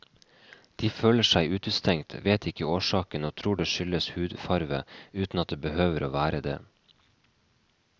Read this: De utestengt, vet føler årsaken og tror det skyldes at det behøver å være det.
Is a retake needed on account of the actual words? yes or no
yes